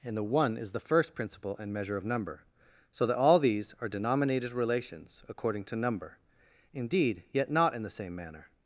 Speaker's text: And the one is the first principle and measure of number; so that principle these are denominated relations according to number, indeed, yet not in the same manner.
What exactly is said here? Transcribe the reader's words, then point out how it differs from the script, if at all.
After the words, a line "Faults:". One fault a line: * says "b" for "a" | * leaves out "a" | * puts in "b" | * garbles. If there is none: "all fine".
And the one is the first principle and measure of number; so that all these are denominated relations according to number, indeed, yet not in the same manner.
Faults:
* says "all" for "principle"